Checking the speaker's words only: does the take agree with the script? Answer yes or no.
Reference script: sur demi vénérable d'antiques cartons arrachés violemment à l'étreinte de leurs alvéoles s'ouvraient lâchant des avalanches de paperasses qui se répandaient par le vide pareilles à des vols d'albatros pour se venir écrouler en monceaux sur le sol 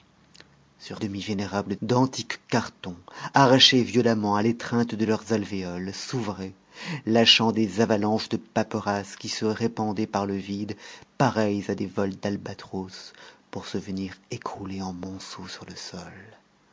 yes